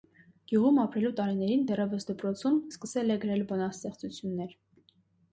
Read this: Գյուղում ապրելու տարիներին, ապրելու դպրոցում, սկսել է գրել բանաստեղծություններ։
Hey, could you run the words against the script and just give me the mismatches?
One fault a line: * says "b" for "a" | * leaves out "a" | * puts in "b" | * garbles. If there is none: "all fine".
* says "դեռևս" for "ապրելու"